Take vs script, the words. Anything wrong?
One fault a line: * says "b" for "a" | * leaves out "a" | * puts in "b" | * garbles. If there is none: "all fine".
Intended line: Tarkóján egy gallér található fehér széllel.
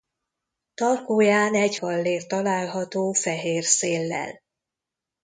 all fine